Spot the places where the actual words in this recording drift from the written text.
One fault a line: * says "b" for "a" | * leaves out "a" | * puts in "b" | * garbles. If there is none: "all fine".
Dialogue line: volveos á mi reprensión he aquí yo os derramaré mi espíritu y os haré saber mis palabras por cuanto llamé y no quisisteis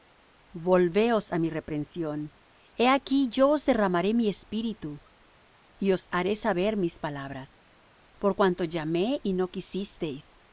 all fine